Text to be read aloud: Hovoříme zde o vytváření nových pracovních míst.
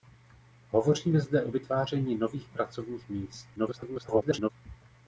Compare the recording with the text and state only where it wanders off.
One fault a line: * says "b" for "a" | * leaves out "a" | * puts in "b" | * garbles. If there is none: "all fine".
* garbles